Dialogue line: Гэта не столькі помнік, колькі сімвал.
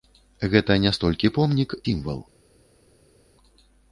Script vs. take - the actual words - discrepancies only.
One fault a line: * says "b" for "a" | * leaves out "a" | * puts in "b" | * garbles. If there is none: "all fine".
* leaves out "колькі"